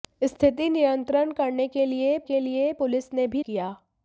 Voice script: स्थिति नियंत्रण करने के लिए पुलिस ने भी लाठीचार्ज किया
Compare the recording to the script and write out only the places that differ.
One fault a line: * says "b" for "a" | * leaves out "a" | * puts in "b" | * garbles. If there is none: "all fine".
* puts in "के लिए"
* leaves out "लाठीचार्ज"